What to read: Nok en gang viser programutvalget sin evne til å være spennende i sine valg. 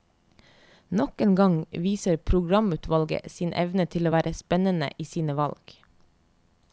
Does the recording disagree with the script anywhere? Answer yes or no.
no